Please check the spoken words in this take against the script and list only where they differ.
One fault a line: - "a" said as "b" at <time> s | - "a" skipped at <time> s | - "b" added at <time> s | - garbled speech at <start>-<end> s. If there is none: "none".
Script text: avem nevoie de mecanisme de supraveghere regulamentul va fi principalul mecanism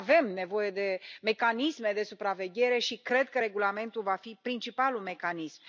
- "și cred că" added at 2.8 s